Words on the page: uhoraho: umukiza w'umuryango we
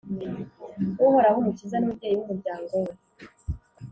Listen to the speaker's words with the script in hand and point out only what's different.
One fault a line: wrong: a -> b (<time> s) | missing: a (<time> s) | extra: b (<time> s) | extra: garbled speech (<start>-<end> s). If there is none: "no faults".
extra: n'umubyeyi (1.8 s)